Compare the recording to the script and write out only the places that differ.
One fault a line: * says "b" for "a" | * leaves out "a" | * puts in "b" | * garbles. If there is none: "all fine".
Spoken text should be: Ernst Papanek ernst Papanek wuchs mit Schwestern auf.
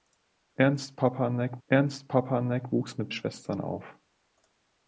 all fine